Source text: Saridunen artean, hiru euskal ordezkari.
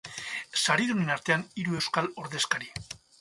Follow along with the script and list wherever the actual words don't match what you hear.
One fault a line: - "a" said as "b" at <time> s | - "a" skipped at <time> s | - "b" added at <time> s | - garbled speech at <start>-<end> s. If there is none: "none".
none